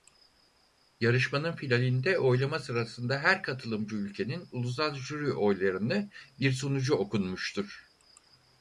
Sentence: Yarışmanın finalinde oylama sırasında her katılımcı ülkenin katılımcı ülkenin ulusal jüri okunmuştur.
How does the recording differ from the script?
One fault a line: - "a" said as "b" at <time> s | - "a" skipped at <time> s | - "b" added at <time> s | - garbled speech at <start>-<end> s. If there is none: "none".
- "katılımcı ülkenin ulusal jüri" said as "ulusal jüri oylarını bir sunucu" at 4.5 s